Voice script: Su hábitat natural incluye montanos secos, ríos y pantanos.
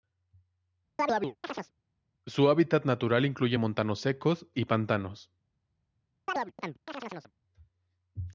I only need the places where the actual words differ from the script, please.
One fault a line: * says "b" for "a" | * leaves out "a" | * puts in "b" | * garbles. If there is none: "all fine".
* leaves out "ríos"